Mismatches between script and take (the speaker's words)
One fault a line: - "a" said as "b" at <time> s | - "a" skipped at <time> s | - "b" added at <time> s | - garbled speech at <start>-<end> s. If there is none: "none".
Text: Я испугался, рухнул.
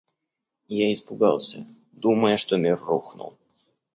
- "думая что мир" added at 1.9 s